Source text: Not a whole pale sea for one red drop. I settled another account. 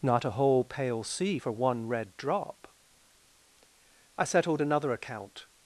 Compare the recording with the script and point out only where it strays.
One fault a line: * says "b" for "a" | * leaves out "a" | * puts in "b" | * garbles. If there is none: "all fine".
all fine